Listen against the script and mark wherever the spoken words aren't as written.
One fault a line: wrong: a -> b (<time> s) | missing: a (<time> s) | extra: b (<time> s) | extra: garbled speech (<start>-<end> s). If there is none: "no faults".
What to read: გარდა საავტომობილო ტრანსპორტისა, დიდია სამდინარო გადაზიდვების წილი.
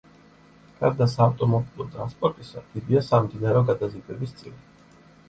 no faults